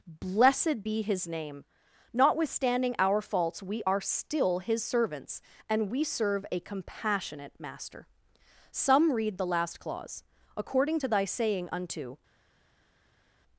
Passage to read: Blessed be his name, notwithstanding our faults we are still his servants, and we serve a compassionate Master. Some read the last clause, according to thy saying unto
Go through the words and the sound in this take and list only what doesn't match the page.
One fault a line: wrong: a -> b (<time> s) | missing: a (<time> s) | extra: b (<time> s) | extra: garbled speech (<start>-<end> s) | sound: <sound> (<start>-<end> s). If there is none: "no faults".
no faults